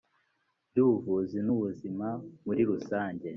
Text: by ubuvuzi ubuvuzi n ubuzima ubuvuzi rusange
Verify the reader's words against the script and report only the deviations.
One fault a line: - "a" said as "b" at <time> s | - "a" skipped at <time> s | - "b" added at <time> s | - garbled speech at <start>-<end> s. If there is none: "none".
- "ubuvuzi" skipped at 1.4 s
- "ubuvuzi" said as "muri" at 2.4 s